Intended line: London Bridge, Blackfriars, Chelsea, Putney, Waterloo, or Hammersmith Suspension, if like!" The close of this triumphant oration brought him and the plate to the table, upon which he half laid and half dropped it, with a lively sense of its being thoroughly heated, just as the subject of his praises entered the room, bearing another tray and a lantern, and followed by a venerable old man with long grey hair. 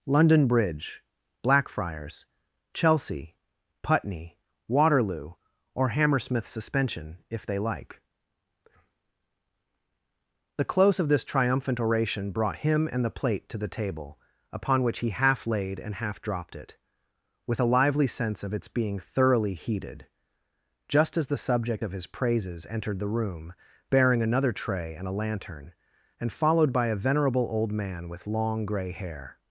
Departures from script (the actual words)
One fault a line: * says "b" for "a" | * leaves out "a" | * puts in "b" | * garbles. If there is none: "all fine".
* puts in "they"